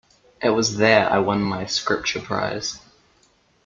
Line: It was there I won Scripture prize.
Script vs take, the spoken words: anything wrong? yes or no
yes